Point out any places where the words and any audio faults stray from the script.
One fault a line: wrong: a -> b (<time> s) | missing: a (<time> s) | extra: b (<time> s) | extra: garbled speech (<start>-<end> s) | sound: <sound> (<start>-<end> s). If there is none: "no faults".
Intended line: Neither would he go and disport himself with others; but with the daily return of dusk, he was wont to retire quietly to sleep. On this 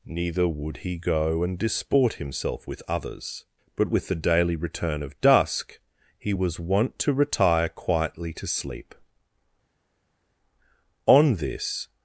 no faults